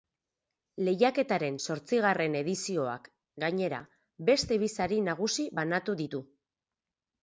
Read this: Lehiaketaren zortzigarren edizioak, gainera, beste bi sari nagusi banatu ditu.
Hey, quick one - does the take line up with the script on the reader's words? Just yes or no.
yes